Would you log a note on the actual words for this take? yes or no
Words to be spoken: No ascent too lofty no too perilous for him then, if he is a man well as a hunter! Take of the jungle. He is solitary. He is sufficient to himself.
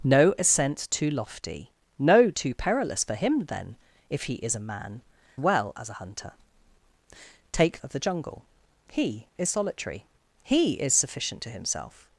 no